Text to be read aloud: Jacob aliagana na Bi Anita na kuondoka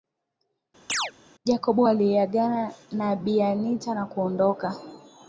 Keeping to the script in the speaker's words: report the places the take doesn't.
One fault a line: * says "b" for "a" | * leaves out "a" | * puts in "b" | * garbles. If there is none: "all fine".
all fine